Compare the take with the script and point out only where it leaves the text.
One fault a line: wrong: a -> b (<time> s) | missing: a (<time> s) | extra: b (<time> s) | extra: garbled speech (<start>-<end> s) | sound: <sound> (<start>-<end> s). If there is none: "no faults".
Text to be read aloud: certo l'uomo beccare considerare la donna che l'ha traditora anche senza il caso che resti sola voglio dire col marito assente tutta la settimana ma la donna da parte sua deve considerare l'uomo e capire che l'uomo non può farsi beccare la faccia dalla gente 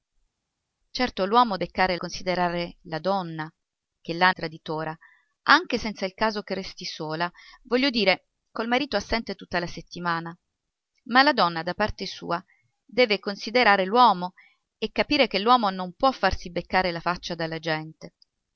no faults